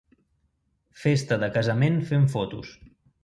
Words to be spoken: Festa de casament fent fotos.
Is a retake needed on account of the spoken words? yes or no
no